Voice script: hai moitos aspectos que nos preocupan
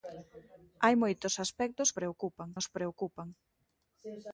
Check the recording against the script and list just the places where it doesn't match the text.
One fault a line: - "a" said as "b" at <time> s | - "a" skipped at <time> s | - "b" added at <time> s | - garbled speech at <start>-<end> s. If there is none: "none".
- "que" said as "preocupan" at 2.0 s